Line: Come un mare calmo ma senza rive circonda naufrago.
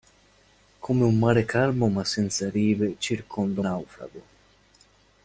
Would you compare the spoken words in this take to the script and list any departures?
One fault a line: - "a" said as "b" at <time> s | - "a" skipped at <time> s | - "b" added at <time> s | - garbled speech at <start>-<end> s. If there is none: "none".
none